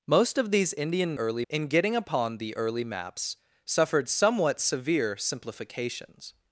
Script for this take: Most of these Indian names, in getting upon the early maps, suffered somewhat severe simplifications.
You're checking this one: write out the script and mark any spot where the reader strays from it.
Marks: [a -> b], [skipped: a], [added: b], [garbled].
Most of these Indian [names, -> early] in getting upon the early maps, suffered somewhat severe simplifications.